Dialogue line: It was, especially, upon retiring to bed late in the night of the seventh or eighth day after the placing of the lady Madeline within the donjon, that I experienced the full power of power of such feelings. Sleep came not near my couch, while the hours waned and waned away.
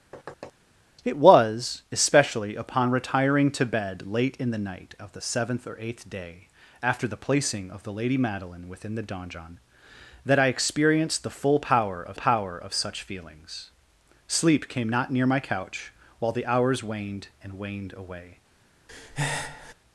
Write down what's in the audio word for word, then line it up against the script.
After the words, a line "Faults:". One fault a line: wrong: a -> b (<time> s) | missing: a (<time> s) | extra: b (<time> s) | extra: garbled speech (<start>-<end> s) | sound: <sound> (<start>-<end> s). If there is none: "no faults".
It was, especially, upon retiring to bed late in the night of the seventh or eighth day after the placing of the lady Madeline within the donjon, that I experienced the full power of power of such feelings. Sleep came not near my couch, while the hours waned and waned away.
Faults:
sound: thud (0.1-0.5 s)
sound: breath (18.9-19.7 s)